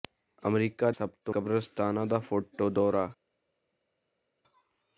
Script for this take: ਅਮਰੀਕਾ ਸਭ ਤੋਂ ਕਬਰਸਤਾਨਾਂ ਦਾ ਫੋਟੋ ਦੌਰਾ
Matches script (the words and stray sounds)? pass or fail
pass